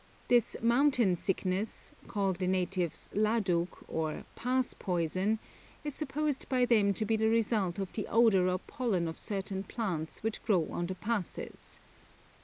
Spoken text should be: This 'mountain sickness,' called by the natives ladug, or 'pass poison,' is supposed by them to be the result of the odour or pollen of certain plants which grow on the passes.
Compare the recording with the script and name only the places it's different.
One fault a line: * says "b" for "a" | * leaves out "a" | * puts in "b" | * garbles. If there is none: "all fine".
* leaves out "by"